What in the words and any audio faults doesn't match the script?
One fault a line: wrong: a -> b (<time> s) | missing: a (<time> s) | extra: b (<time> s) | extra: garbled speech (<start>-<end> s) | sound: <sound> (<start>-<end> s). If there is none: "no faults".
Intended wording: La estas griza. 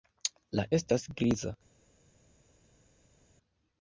no faults